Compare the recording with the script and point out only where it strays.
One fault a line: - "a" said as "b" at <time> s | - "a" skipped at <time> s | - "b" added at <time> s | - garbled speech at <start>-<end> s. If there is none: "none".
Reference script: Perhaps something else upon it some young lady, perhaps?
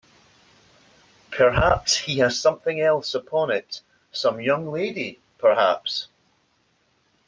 - "he has" added at 2.0 s